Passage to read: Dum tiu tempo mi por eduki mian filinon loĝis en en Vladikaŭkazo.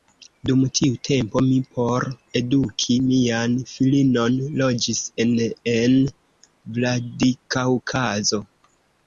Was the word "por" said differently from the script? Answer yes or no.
no